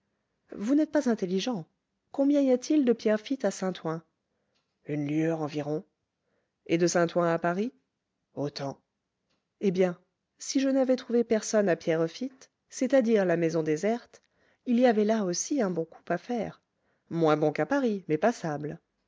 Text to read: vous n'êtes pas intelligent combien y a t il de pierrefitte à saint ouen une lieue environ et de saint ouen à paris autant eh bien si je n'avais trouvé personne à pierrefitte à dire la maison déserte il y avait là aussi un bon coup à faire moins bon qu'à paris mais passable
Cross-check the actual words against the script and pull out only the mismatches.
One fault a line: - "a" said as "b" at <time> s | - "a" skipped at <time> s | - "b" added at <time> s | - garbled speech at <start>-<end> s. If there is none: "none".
- "c'est" added at 12.7 s